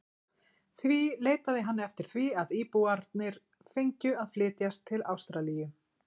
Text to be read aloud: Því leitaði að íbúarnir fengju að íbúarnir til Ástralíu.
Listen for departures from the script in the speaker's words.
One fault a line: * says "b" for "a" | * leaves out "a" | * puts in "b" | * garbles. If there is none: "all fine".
* puts in "hann eftir því"
* says "flytjast" for "íbúarnir"